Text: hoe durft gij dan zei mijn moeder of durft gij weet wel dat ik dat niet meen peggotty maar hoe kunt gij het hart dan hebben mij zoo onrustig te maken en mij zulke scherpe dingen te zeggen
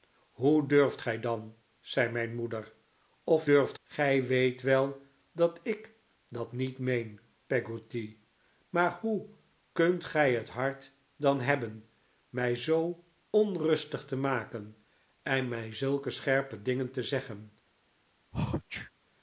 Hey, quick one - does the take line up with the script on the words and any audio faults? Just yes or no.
no